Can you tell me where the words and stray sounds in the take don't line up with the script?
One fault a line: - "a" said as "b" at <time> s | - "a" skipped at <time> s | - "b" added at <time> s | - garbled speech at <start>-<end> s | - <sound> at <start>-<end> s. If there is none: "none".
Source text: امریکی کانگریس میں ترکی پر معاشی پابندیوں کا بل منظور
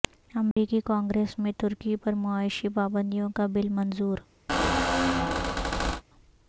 - dropout at 0.5-0.6 s
- squeak at 4.5-6.0 s